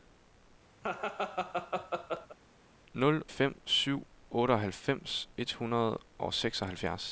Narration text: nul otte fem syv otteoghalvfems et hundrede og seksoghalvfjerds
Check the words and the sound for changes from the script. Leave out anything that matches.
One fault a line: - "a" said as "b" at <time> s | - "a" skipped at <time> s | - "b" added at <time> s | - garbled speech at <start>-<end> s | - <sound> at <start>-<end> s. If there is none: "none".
- laugh at 0.8-2.4 s
- "otte" skipped at 3.2 s